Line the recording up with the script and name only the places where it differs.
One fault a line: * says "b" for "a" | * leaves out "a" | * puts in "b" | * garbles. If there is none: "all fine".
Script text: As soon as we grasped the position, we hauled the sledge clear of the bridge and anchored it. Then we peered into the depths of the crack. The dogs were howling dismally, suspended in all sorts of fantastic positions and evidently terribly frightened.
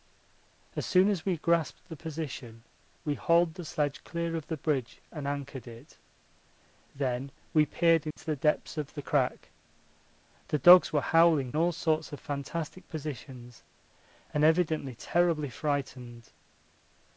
* leaves out "dismally suspended in"